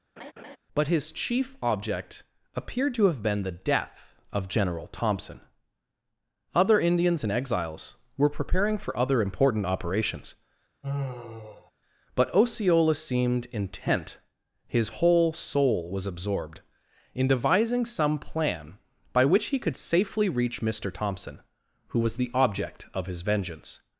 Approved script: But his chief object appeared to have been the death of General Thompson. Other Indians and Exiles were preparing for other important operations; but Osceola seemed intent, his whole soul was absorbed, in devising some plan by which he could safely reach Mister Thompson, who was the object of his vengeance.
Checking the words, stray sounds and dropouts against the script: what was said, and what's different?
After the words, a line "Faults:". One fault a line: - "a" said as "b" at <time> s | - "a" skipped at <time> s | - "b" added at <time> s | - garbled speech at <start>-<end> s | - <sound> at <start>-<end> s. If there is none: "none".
But his chief object appeared to have been the death of General Thompson. Other Indians and Exiles were preparing for other important operations; but Osceola seemed intent, his whole soul was absorbed, in devising some plan by which he could safely reach Mister Thompson, who was the object of his vengeance.
Faults:
- laugh at 0.2-0.6 s
- sigh at 10.8-11.7 s